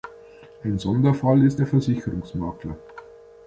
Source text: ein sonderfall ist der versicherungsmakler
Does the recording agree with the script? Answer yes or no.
yes